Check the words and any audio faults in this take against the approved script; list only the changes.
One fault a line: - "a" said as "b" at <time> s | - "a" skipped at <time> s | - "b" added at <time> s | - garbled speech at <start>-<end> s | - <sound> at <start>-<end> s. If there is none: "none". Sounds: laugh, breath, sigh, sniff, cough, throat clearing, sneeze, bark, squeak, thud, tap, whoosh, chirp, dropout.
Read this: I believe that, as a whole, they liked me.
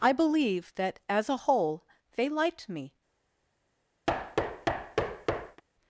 - thud at 4.1-5.6 s